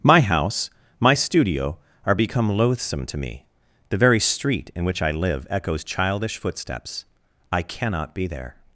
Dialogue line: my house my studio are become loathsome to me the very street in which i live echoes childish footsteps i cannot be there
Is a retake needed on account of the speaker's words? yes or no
no